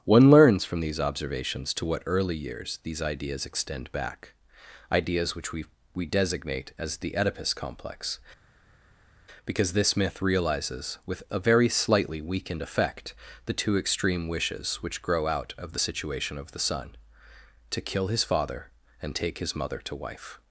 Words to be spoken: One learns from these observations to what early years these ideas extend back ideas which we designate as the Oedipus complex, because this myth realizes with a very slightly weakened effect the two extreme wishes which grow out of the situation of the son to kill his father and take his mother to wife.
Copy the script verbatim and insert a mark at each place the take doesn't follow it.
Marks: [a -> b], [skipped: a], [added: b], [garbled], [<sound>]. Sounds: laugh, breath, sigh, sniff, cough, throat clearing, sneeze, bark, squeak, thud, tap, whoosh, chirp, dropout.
One learns from these observations to what early years these ideas extend back ideas which we [added: we] designate as the Oedipus complex, because this myth realizes with a very slightly weakened effect the two extreme wishes which grow out of the situation of the son to kill his father and take his mother to wife.